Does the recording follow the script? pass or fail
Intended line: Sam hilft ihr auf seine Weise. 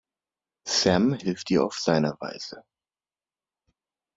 pass